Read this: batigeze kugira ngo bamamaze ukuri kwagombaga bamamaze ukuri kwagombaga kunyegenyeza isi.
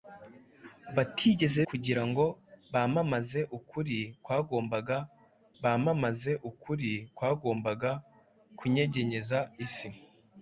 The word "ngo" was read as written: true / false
true